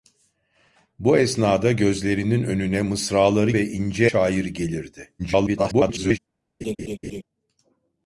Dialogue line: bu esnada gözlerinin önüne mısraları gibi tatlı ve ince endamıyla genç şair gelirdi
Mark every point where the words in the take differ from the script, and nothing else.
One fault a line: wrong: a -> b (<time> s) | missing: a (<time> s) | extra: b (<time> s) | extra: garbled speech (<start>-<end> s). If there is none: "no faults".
missing: gibi tatlı (3.5 s)
missing: endamıyla genç (4.1 s)
extra: garbled speech (5.2-6.2 s)